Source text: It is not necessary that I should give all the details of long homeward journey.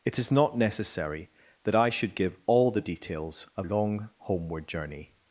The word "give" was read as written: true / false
true